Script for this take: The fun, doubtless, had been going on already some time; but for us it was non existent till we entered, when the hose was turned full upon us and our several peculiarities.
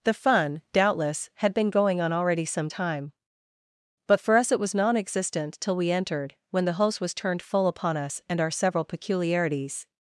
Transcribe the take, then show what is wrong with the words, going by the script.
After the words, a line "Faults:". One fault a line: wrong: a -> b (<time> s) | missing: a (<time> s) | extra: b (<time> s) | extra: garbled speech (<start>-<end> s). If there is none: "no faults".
The fun, doubtless, had been going on already some time; but for us it was non existent till we entered, when the host was turned full upon us and our several peculiarities.
Faults:
wrong: hose -> host (6.7 s)